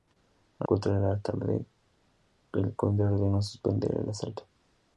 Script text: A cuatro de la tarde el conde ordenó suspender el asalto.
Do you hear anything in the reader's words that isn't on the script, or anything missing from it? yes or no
no